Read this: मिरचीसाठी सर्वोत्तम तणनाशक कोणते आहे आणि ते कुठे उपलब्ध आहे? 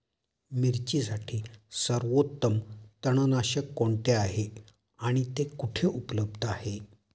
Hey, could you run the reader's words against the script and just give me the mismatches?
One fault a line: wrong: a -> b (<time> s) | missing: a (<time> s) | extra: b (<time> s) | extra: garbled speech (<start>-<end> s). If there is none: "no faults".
no faults